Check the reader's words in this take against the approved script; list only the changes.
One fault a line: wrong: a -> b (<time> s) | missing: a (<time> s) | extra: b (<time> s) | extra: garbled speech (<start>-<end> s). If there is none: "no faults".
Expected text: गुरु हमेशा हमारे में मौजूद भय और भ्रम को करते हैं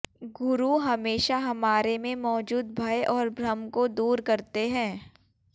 extra: दूर (3.9 s)